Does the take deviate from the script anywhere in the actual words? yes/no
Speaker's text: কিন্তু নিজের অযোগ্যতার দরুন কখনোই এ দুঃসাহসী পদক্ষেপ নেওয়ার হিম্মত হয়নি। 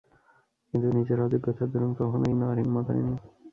yes